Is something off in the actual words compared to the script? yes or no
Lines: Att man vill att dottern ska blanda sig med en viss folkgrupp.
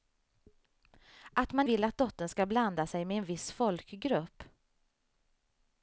no